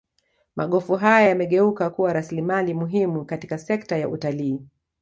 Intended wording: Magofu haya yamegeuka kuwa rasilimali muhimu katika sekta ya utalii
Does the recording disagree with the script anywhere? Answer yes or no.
no